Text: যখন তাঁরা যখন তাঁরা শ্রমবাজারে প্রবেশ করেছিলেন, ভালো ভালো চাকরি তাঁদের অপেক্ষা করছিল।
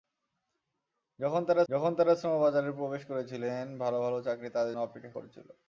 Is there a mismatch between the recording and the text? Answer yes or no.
no